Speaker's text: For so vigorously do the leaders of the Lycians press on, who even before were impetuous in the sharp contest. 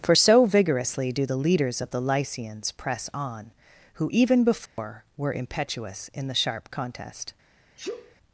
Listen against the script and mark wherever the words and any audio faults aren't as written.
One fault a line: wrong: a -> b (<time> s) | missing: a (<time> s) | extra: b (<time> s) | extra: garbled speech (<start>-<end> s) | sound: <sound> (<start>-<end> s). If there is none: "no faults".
sound: dropout (4.7-4.8 s)
sound: sneeze (7.8-8.2 s)